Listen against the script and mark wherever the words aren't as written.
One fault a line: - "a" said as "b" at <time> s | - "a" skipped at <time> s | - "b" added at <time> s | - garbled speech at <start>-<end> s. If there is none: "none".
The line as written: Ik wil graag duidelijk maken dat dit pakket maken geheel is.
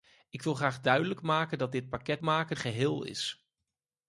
none